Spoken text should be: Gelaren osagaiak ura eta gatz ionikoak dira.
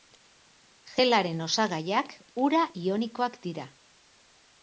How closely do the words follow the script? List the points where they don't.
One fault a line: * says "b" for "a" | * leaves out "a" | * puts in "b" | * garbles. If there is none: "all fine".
* leaves out "eta gatz"